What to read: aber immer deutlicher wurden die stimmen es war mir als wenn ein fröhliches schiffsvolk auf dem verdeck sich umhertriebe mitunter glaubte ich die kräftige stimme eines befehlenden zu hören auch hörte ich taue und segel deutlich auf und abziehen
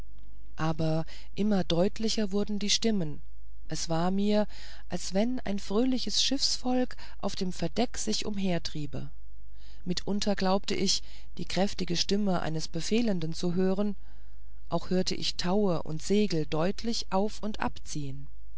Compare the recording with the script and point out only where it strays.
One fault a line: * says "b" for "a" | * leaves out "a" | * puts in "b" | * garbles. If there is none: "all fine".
all fine